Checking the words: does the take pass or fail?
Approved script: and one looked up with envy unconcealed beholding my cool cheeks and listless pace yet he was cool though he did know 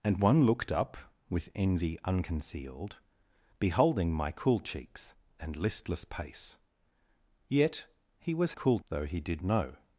pass